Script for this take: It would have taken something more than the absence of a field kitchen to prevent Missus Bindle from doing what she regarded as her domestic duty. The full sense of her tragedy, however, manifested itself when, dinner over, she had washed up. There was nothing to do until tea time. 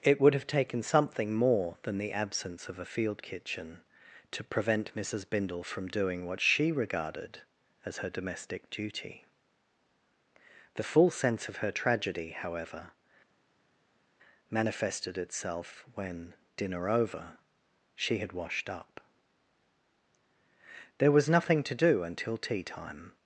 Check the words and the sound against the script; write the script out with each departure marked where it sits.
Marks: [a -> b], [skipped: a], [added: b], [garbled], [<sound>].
It would have taken something more than the absence of a field kitchen to prevent Missus Bindle from doing what she regarded as her domestic duty. The full sense of her tragedy, however, manifested itself when, dinner over, she had washed up. There was nothing to do until tea time.